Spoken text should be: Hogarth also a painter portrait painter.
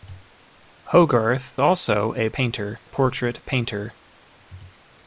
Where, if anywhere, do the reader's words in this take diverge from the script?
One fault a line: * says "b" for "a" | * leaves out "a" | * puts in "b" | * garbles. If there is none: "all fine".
all fine